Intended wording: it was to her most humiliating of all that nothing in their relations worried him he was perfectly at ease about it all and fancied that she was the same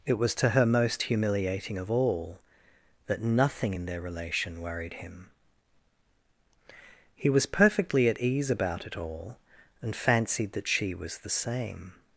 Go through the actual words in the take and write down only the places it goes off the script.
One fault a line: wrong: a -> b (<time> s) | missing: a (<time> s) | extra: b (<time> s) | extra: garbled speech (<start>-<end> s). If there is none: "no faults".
wrong: relations -> relation (4.0 s)